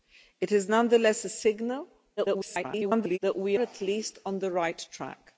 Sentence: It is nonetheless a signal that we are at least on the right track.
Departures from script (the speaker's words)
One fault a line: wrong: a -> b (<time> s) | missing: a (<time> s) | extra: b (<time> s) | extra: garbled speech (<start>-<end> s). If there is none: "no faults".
extra: garbled speech (2.2-3.2 s)
missing: are (3.6 s)